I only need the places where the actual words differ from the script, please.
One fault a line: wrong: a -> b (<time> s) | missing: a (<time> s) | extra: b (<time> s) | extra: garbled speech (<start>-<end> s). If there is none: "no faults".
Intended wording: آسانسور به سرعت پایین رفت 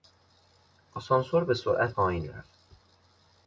no faults